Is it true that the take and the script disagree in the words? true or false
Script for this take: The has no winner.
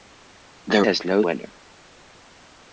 false